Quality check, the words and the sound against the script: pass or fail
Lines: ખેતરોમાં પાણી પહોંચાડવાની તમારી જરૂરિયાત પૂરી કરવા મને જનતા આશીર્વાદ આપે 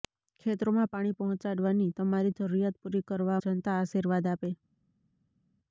fail